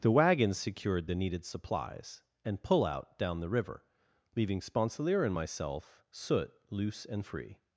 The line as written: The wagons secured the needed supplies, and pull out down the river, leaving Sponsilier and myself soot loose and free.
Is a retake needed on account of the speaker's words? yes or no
no